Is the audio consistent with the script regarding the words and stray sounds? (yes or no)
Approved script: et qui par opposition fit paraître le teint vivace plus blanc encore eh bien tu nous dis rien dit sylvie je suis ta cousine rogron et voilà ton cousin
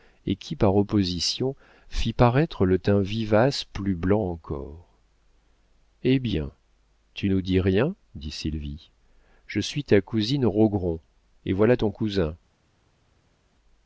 yes